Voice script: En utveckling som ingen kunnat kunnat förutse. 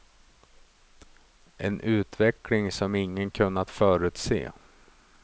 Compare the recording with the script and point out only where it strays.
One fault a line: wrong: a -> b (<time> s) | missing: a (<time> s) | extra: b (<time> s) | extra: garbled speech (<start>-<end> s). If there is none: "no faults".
missing: kunnat (3.7 s)